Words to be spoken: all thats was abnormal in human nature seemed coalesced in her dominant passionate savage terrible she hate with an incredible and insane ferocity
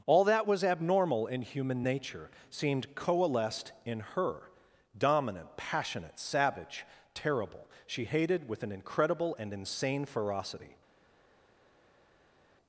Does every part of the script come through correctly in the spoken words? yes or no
no